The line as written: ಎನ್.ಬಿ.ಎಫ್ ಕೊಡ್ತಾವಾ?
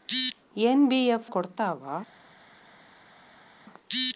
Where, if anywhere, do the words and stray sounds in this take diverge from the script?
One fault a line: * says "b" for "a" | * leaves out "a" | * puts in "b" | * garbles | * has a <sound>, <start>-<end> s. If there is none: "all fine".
all fine